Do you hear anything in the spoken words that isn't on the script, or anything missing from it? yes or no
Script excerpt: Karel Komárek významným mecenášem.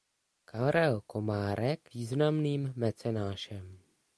no